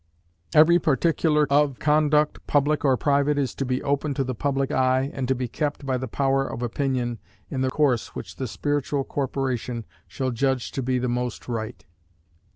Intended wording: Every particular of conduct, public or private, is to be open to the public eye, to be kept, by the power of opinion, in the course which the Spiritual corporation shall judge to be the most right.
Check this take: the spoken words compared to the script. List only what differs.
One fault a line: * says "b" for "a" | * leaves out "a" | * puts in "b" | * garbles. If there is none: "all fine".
* puts in "and"